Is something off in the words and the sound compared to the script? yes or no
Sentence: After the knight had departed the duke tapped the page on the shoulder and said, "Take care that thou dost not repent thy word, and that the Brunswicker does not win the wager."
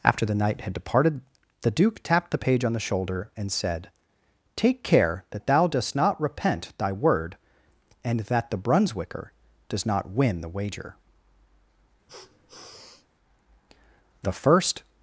yes